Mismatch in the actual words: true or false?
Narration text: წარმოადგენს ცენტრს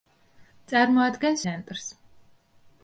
false